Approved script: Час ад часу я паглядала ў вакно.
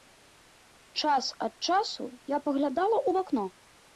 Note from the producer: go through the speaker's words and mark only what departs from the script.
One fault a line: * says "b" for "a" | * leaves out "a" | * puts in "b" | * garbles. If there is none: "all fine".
all fine